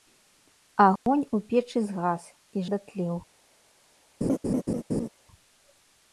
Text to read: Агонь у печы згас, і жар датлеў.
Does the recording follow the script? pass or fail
fail